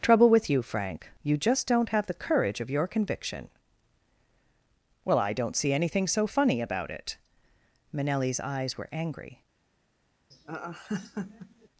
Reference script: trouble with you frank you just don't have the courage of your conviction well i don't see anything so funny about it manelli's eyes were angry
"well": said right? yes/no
yes